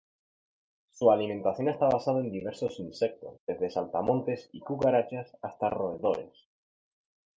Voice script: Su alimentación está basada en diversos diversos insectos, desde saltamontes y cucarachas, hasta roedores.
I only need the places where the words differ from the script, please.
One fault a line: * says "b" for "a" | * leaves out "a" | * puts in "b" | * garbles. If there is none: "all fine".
* leaves out "diversos"